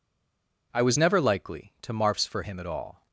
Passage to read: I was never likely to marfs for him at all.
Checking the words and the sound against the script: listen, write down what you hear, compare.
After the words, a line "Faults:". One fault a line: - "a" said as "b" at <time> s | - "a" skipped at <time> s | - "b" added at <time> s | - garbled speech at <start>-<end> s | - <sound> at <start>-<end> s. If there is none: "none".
I was never likely to marfs for him at all.
Faults:
none